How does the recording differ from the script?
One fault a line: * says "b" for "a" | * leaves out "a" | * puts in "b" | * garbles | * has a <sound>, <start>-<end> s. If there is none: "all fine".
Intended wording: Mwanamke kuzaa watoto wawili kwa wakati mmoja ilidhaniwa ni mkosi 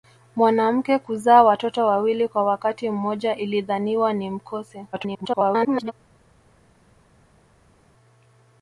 * garbles